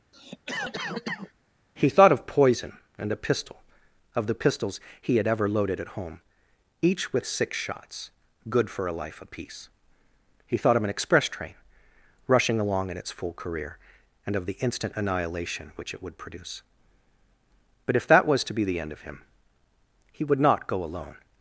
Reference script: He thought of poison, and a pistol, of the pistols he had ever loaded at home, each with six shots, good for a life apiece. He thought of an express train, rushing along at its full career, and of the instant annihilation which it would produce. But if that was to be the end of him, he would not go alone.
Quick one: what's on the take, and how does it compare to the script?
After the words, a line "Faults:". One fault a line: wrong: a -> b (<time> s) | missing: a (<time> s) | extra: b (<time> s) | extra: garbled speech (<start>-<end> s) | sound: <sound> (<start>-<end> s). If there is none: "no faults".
He thought of poison, and a pistol, of the pistols he had ever loaded at home, each with six shots, good for a life apiece. He thought of an express train, rushing along in its full career, and of the instant annihilation which it would produce. But if that was to be the end of him, he would not go alone.
Faults:
sound: cough (0.1-1.3 s)
wrong: at -> in (12.9 s)